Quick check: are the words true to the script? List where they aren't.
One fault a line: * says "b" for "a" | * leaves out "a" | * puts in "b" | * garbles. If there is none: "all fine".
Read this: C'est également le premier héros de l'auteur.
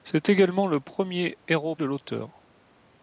all fine